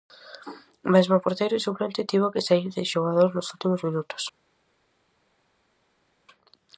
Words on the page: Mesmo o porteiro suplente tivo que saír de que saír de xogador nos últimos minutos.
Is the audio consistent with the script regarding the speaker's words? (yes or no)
no